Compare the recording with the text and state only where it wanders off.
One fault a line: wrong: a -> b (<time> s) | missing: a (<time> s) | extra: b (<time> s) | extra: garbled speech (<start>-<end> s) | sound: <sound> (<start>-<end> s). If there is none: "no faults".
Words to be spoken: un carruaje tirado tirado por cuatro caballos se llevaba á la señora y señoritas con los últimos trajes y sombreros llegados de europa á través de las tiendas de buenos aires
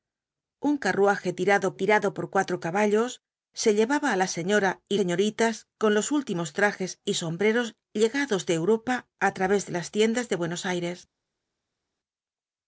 no faults